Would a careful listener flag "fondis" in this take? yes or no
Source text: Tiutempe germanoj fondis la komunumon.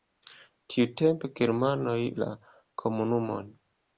yes